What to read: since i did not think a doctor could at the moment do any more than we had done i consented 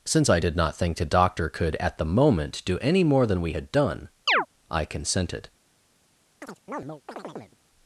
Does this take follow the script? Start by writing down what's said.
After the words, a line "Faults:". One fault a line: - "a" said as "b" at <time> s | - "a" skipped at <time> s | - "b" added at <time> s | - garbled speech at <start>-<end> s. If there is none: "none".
since i did not think the doctor could at the moment do any more than we had done i consented
Faults:
- "a" said as "the" at 1.0 s